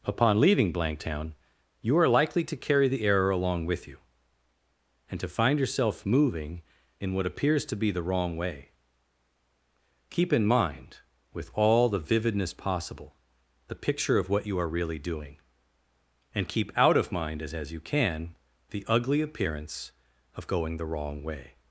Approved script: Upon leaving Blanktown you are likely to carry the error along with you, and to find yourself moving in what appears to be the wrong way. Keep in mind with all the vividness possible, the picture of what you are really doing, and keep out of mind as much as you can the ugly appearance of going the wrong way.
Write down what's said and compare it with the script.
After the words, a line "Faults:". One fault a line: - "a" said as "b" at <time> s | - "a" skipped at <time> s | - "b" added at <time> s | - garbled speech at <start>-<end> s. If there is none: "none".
Upon leaving Blanktown you are likely to carry the error along with you, and to find yourself moving in what appears to be the wrong way. Keep in mind with all the vividness possible, the picture of what you are really doing, and keep out of mind as as you can the ugly appearance of going the wrong way.
Faults:
- "much" skipped at 17.5 s